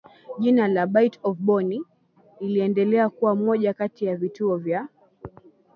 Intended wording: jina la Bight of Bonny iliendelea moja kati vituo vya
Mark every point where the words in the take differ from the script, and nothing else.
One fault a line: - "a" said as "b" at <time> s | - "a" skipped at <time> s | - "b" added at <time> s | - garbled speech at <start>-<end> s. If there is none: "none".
- "kuwa" added at 3.1 s
- "ya" added at 4.0 s